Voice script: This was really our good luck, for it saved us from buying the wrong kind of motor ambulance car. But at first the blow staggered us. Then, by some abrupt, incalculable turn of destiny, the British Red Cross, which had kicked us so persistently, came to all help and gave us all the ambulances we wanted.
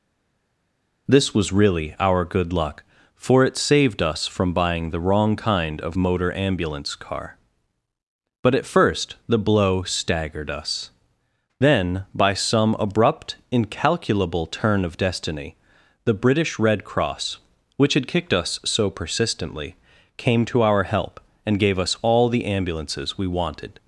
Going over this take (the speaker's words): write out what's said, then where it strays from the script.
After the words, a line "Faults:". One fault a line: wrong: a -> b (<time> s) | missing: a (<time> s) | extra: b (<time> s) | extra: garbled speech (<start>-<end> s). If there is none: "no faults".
This was really our good luck, for it saved us from buying the wrong kind of motor ambulance car. But at first the blow staggered us. Then, by some abrupt, incalculable turn of destiny, the British Red Cross, which had kicked us so persistently, came to our help and gave us all the ambulances we wanted.
Faults:
wrong: all -> our (20.6 s)